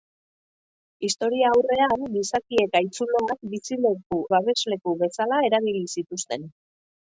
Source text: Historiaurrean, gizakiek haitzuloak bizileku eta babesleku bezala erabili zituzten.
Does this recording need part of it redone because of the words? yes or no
yes